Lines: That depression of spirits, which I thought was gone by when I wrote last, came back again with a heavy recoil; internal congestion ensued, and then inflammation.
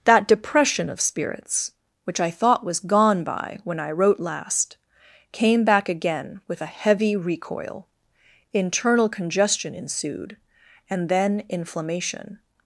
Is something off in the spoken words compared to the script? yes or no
no